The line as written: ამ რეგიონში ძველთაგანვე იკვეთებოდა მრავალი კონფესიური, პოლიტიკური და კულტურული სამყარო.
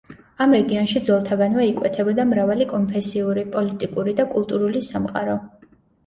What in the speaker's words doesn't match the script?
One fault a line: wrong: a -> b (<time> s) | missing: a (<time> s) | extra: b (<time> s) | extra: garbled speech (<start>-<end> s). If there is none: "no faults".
no faults